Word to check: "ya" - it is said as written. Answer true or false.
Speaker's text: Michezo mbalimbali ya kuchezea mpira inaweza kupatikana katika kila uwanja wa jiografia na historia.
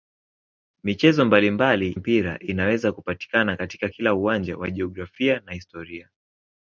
false